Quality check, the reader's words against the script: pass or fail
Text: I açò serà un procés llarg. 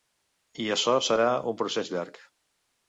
pass